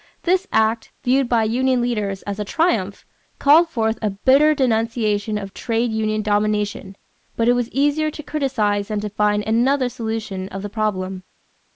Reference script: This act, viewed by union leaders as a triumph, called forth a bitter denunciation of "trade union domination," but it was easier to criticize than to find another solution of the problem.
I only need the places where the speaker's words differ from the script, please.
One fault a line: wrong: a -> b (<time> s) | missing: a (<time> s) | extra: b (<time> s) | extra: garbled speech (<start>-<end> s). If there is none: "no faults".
no faults